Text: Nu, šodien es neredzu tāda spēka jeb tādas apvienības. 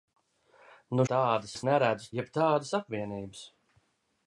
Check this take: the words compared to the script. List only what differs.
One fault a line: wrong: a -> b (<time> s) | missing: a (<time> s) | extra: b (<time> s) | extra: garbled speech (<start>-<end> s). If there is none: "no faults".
wrong: šodien -> tāda (1.1 s)
missing: tāda spēka (2.1 s)